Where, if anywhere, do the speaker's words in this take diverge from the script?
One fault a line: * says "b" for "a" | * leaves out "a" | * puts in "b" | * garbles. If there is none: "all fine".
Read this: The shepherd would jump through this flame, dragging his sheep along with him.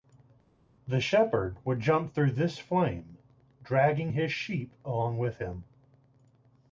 all fine